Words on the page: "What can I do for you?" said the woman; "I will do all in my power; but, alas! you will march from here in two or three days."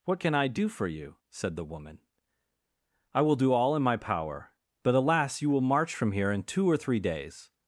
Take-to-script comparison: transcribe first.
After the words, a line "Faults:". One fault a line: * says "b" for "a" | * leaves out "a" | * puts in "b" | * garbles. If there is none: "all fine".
"What can I do for you?" said the woman; "I will do all in my power; but, alas! you will march from here in two or three days."
Faults:
all fine